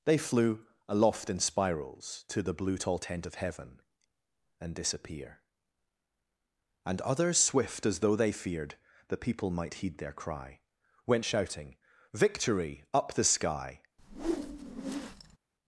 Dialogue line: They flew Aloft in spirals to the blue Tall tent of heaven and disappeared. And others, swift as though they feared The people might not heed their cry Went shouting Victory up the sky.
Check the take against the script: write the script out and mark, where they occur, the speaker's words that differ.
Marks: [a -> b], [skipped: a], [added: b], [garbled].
They flew Aloft in spirals to the blue Tall tent of heaven and [disappeared. -> disappear] And others, swift as though they feared The people might [skipped: not] heed their cry Went shouting Victory up the sky.